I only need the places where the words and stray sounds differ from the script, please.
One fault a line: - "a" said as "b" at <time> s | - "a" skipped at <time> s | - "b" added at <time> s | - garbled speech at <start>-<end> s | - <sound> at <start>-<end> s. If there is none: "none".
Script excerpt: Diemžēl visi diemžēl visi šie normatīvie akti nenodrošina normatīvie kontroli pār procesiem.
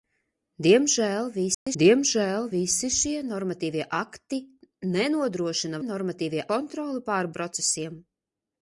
- dropout at 1.5-1.7 s